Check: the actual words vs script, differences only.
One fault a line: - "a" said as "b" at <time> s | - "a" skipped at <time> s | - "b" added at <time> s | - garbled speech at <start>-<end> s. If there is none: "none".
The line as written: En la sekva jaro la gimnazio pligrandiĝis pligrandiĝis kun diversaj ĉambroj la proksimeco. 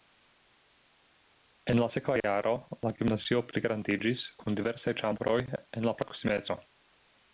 - "pligrandiĝis" skipped at 4.3 s
- "en" added at 5.6 s